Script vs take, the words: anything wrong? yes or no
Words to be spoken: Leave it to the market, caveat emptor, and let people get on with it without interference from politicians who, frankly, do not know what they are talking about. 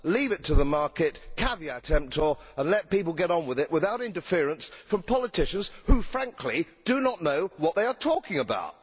no